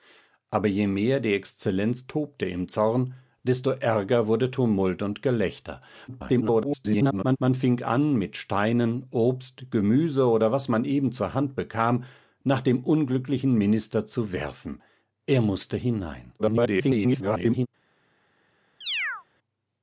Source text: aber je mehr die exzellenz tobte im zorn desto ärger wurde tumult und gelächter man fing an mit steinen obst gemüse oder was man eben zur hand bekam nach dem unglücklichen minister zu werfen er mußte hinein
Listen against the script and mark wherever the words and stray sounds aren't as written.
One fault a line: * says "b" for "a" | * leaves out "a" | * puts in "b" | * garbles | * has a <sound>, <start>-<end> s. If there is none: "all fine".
* garbles
* garbles
* has a chirp, 18.8-19.2 s